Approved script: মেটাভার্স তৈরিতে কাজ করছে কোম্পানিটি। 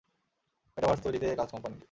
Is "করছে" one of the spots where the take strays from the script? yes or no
yes